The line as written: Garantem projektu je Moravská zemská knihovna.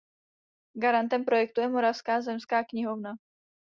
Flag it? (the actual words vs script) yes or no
no